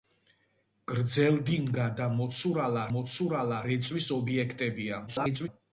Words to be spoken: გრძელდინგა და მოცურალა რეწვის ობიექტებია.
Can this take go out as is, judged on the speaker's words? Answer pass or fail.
fail